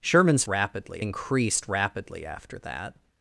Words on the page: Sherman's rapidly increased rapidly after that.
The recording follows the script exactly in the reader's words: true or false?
true